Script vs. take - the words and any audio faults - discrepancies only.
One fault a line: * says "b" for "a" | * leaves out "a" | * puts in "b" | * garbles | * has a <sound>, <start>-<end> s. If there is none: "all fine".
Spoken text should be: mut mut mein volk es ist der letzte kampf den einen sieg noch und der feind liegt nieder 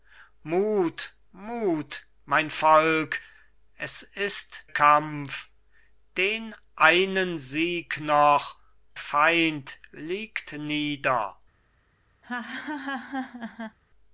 * leaves out "der letzte"
* leaves out "und der"
* has a laugh, 12.2-13.8 s